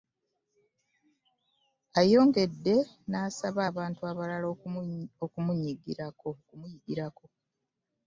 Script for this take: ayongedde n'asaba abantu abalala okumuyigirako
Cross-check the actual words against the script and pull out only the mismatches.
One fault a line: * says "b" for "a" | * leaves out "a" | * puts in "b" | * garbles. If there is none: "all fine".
all fine